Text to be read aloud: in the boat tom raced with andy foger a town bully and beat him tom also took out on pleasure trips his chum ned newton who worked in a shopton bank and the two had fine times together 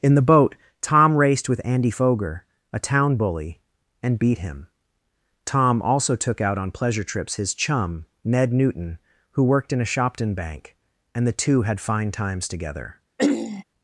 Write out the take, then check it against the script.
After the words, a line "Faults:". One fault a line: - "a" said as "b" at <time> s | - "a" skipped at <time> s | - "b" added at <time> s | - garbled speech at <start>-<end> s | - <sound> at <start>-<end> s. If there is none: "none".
in the boat tom raced with andy foger a town bully and beat him tom also took out on pleasure trips his chum ned newton who worked in a shopton bank and the two had fine times together
Faults:
- throat clearing at 13.2-13.6 s